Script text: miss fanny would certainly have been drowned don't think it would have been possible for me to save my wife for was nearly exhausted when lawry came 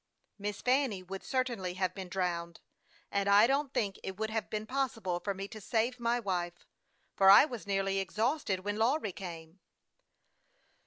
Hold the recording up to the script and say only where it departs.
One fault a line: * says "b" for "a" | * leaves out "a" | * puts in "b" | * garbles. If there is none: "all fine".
* puts in "and i"
* puts in "i"